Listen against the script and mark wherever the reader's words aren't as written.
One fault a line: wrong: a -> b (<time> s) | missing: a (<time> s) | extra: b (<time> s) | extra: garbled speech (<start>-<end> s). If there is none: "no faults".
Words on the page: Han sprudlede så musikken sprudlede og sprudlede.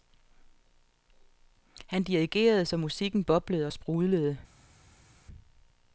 wrong: sprudlede -> dirigerede (2.0 s)
wrong: sprudlede -> boblede (3.2 s)